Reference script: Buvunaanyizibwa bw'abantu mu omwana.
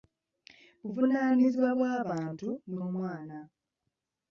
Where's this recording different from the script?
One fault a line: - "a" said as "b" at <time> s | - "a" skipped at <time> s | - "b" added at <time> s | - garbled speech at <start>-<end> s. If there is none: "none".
none